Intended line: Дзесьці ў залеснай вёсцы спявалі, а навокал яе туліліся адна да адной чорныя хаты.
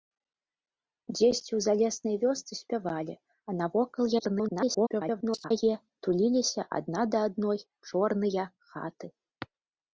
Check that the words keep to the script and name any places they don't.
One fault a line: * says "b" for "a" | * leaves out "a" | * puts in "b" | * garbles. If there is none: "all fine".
* garbles